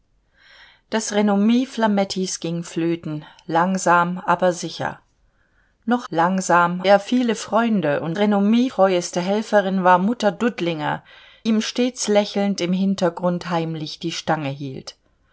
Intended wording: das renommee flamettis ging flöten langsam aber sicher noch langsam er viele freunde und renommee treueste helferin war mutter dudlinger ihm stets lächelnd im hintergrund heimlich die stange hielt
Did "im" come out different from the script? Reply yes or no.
no